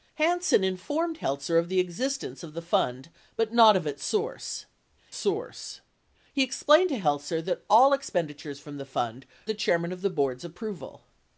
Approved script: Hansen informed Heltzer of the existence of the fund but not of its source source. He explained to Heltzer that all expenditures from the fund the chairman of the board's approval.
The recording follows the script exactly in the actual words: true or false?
true